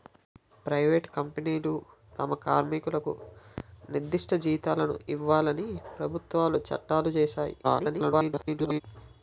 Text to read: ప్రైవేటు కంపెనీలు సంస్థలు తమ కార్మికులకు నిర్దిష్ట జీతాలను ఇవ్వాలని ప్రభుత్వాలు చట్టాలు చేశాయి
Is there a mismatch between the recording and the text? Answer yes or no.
yes